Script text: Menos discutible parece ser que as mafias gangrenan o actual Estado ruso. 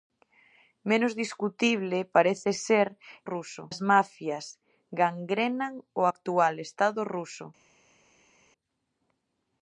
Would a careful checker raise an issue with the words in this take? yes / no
yes